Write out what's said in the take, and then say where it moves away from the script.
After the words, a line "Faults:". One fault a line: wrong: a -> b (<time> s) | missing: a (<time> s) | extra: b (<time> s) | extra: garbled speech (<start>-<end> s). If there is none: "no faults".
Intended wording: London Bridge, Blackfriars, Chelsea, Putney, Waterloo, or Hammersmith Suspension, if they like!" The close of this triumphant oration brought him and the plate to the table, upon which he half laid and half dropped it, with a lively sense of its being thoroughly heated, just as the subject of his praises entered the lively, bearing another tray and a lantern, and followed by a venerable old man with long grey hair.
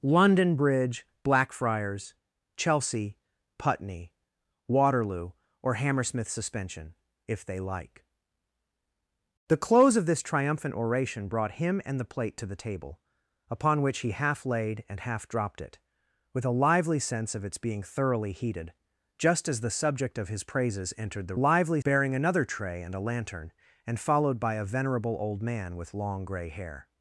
London Bridge, Blackfriars, Chelsea, Putney, Waterloo, or Hammersmith Suspension, if they like!" The close of this triumphant oration brought him and the plate to the table, upon which he half laid and half dropped it, with a lively sense of its being thoroughly heated, just as the subject of his praises entered the lively, bearing another tray and a lantern, and followed by a venerable old man with long grey hair.
Faults:
no faults